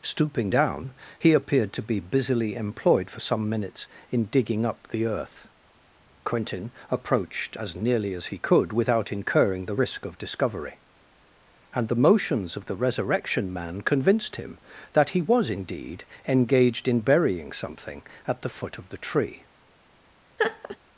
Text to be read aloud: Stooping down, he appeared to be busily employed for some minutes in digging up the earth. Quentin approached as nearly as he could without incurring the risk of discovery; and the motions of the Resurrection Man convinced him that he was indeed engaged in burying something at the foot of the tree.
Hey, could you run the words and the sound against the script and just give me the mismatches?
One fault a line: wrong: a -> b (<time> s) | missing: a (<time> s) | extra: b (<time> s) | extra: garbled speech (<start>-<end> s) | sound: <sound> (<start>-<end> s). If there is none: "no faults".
sound: laugh (20.4-20.8 s)